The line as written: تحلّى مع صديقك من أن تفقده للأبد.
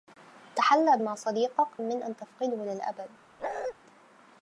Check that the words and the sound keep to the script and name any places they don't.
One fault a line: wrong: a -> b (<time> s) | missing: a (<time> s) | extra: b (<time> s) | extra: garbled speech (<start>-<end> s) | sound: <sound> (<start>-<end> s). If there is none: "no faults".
sound: bark (3.4-3.7 s)